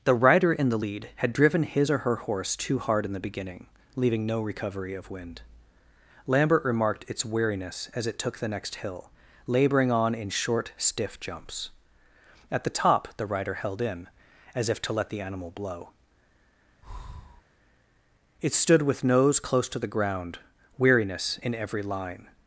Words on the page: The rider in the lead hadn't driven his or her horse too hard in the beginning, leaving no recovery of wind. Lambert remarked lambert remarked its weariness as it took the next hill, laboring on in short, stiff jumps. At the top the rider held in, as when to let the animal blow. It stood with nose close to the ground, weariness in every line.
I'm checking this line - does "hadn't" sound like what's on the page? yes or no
no